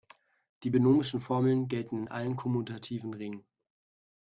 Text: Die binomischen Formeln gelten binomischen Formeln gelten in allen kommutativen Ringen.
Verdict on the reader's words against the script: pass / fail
fail